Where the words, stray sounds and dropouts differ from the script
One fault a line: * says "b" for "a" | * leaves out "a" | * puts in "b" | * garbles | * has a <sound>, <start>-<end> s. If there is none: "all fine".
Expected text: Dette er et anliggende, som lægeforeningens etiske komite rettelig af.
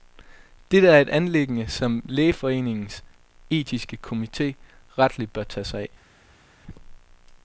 * puts in "bør tage sig"